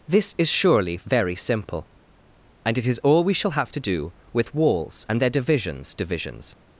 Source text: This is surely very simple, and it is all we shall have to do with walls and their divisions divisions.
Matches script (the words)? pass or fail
pass